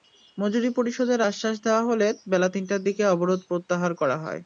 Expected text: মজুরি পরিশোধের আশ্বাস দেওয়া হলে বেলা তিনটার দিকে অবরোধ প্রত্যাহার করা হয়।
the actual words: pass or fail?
pass